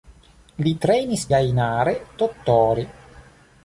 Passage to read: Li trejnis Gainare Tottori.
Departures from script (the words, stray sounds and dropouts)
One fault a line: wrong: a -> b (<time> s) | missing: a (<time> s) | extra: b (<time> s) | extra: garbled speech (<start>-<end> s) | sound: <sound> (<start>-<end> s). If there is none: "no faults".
no faults